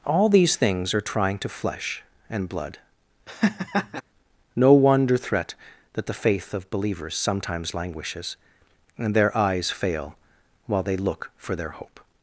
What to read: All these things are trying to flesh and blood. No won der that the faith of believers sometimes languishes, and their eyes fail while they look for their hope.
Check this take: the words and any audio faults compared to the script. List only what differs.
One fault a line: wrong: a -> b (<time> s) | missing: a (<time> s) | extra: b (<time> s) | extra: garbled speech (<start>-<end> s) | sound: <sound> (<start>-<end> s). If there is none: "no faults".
sound: laugh (3.3-4.0 s)
wrong: won der -> wonder threat (4.7 s)